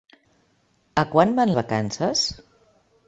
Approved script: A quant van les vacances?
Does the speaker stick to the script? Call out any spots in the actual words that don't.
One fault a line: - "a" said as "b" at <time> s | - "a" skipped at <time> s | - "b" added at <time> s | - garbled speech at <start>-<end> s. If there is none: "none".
- "les" skipped at 1.5 s